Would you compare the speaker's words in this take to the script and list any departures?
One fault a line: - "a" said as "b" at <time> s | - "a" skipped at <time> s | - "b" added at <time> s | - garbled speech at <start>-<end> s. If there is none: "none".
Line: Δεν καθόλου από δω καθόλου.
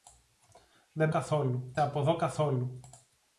none